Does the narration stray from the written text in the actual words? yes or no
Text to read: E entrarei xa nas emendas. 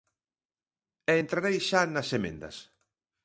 no